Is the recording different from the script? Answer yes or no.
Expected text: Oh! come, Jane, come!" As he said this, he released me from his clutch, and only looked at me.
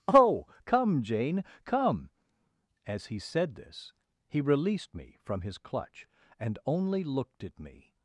no